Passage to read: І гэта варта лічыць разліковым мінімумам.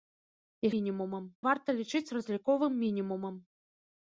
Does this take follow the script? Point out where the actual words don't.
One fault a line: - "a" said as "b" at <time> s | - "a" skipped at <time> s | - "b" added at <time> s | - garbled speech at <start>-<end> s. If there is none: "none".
- "гэта" said as "мінімумам" at 0.8 s